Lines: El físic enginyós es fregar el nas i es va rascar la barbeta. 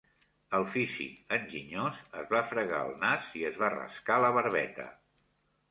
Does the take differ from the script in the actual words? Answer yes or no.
yes